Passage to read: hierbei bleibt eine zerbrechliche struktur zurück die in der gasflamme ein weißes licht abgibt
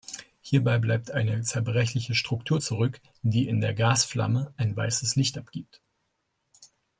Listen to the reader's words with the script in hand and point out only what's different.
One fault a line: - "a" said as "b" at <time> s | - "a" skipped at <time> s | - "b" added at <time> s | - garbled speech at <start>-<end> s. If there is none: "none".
none